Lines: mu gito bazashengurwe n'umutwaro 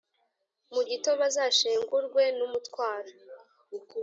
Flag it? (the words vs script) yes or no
no